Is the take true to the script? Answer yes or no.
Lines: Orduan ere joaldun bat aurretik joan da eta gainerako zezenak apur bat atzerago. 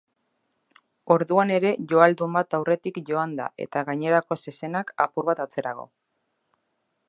yes